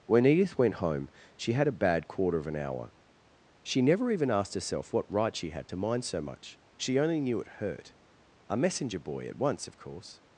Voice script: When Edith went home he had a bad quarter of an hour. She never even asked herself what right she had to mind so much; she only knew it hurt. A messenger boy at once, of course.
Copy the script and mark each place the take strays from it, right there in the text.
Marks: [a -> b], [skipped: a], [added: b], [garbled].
When Edith went home [he -> she] had a bad quarter of an hour. She never even asked herself what right she had to mind so much; she only knew it hurt. A messenger boy at once, of course.